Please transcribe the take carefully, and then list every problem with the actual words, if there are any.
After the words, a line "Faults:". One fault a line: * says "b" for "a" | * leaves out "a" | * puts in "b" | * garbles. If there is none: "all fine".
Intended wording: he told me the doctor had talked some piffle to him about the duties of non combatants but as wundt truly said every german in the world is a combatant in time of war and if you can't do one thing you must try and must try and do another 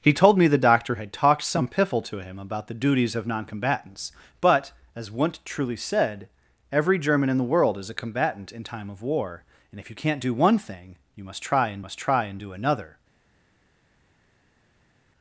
he told me the doctor had talked some piffle to him about the duties of non combatants but as wundt truly said every german in the world is a combatant in time of war and if you can't do one thing you must try and must try and do another
Faults:
all fine